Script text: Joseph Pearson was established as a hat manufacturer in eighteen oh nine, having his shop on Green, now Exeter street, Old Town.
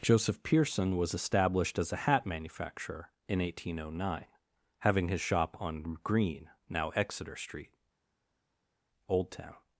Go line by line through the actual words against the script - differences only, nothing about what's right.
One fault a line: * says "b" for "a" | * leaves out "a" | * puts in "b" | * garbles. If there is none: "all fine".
all fine